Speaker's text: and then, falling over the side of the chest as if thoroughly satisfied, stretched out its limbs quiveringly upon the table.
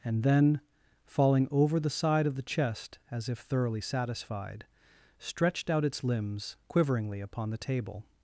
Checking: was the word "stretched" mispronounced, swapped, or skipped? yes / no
no